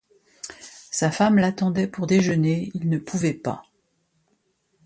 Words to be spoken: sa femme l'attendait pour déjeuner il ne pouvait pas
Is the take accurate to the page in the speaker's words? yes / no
yes